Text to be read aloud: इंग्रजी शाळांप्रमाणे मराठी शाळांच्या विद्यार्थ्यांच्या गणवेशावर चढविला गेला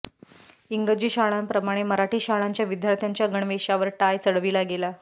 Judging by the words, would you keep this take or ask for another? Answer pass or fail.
fail